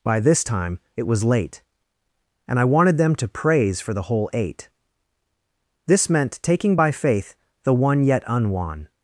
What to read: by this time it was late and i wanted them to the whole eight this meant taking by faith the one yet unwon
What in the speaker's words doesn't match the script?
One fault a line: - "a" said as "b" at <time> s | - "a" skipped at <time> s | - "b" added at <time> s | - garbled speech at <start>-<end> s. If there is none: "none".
- "praise for" added at 3.3 s